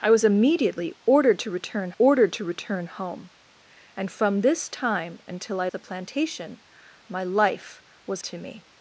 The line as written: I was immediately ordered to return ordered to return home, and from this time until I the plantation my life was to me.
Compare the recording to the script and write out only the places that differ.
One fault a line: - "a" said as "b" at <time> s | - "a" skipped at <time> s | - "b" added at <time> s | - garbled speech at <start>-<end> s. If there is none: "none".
none